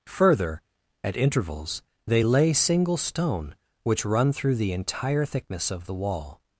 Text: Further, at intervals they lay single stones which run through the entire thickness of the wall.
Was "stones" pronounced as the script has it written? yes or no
no